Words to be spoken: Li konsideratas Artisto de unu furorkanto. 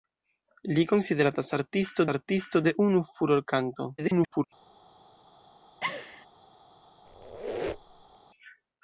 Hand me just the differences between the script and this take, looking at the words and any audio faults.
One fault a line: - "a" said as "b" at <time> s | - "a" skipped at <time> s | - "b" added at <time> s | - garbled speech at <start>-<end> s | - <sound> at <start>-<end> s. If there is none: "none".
- "Artisto" added at 2.1 s
- garbled speech at 4.0-4.4 s
- laugh at 5.8-6.3 s
- squeak at 7.1-8.2 s